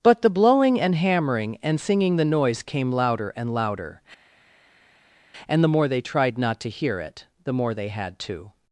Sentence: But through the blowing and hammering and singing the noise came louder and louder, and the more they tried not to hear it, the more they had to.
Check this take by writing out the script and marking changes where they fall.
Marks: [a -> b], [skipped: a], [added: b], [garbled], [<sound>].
But [skipped: through] the blowing and hammering and singing the noise came louder and louder, and the more they tried not to hear it, the more they had to.